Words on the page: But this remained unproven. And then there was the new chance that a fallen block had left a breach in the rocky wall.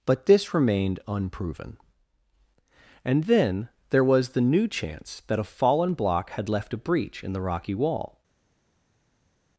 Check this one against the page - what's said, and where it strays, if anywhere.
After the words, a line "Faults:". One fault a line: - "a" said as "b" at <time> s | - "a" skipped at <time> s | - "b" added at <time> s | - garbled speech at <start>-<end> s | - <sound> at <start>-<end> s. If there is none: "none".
But this remained unproven. And then there was the new chance that a fallen block had left a breach in the rocky wall.
Faults:
none